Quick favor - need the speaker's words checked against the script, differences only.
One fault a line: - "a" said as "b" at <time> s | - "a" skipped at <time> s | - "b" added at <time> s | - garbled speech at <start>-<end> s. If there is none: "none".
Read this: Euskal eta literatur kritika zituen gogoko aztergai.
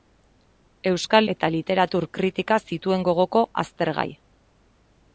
none